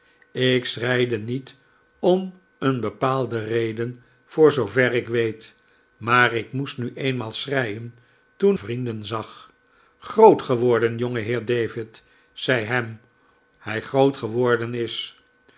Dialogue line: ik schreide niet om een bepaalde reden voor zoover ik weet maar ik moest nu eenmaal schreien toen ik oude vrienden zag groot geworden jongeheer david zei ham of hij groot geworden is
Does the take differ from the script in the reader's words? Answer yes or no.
yes